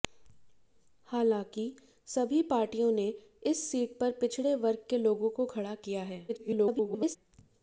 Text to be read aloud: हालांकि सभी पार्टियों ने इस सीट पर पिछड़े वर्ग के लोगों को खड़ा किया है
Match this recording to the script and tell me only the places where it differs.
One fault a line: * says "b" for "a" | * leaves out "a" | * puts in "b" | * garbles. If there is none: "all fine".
* garbles